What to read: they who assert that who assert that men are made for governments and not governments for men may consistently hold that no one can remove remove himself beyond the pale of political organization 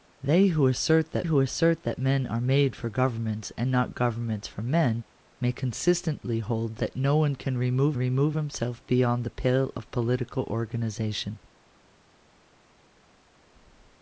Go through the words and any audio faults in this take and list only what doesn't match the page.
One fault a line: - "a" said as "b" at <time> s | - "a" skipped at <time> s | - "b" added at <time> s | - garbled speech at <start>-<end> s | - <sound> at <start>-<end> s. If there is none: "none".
none